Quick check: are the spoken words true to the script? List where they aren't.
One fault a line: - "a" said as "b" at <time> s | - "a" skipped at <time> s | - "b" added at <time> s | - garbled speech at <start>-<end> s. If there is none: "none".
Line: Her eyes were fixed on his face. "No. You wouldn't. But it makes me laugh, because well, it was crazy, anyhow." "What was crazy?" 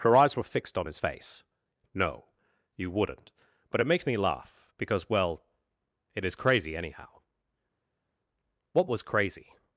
- "was" said as "is" at 6.3 s